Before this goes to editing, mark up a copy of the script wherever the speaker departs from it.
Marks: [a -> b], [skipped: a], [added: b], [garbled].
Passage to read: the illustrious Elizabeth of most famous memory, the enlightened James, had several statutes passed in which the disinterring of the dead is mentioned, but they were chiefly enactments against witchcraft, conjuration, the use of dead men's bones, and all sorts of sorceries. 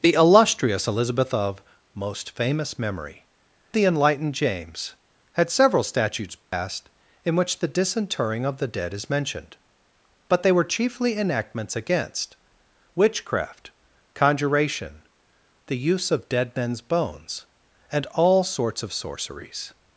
the illustrious Elizabeth of most famous memory, the enlightened James, had several statutes passed in which the disinterring of the dead is mentioned, but they were chiefly enactments against witchcraft, conjuration, the use of dead men's bones, and all sorts of sorceries.